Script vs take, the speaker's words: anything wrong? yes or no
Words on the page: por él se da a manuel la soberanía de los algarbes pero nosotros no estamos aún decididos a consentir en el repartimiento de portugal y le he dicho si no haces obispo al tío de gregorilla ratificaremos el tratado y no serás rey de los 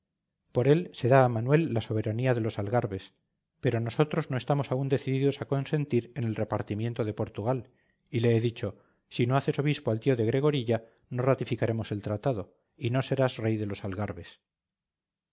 yes